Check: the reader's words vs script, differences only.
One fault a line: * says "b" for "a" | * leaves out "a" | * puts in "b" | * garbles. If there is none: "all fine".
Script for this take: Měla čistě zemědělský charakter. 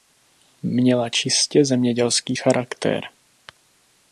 all fine